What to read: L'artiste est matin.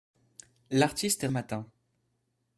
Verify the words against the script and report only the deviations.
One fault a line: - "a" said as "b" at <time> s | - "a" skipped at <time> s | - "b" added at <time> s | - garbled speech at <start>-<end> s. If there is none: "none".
none